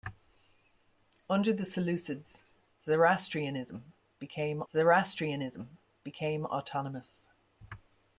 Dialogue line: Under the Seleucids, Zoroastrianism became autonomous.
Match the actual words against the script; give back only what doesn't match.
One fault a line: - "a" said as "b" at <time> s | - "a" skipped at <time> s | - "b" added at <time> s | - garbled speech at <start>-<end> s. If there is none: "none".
- "Zoroastrianism became" added at 4.7 s